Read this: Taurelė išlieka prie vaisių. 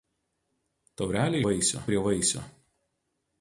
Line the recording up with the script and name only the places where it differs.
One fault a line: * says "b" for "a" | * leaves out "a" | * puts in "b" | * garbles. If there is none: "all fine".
* says "vaisių" for "išlieka"